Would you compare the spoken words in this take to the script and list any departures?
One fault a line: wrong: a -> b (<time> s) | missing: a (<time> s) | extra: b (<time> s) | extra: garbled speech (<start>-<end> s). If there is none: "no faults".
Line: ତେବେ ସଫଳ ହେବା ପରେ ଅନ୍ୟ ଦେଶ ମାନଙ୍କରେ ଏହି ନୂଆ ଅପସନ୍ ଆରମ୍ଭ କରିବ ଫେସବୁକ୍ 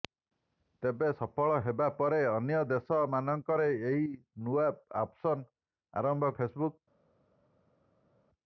missing: କରିବ (6.3 s)